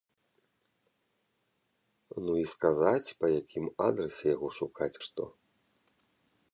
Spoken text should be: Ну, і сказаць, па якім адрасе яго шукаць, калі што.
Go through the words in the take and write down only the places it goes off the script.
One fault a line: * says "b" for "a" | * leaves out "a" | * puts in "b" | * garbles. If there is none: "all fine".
* leaves out "калі"